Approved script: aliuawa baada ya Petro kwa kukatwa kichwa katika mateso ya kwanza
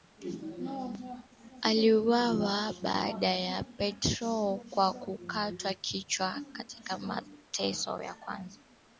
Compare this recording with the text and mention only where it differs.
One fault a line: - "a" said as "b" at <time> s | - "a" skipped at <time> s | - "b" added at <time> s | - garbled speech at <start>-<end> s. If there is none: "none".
none